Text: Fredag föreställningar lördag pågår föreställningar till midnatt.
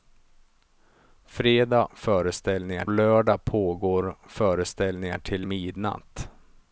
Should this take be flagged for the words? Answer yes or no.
no